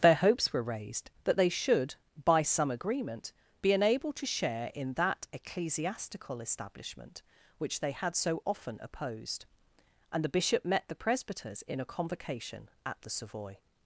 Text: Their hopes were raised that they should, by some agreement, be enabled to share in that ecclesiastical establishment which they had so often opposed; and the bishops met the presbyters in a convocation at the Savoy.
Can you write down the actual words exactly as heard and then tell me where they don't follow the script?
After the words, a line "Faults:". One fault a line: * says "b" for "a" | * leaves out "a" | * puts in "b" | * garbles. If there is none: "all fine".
Their hopes were raised that they should, by some agreement, be enabled to share in that ecclesiastical establishment which they had so often opposed; and the bishop met the presbyters in a convocation at the Savoy.
Faults:
* says "bishop" for "bishops"